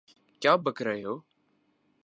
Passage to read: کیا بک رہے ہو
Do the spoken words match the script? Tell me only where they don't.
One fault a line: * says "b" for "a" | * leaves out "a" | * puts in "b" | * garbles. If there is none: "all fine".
all fine